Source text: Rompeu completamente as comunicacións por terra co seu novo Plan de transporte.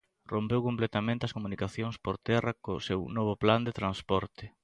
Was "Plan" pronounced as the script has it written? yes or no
yes